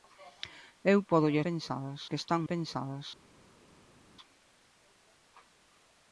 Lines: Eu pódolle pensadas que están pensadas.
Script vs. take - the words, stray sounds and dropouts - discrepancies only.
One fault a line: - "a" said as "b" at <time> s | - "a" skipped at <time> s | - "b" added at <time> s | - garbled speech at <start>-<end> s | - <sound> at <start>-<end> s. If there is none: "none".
none